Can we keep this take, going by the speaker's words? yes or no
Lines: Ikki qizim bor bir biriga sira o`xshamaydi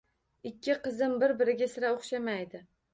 no